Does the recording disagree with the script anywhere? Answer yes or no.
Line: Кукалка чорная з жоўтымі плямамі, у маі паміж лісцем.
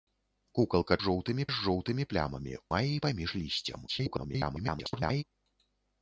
yes